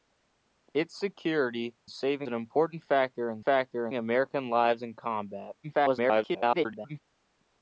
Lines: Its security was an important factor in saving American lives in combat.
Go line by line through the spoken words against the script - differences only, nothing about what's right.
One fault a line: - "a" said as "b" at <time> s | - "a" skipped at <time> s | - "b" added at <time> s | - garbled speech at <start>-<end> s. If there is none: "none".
- "was" said as "saving" at 1.9 s
- "saving" said as "factor" at 3.4 s
- garbled speech at 5.6-7.0 s